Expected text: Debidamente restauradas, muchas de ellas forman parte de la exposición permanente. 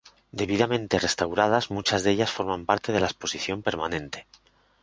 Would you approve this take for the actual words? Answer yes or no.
yes